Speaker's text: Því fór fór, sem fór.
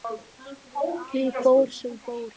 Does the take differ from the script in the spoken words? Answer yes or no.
yes